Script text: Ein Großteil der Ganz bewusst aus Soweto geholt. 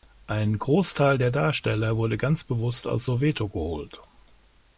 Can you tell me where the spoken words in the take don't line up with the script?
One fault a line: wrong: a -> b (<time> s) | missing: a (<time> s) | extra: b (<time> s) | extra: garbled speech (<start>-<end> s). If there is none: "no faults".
extra: Darsteller wurde (1.3 s)